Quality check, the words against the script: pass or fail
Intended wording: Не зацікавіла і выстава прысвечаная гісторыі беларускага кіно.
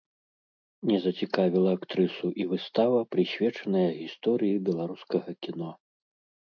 fail